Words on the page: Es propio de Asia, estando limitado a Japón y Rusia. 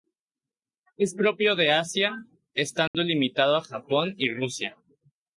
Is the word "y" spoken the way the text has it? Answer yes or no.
yes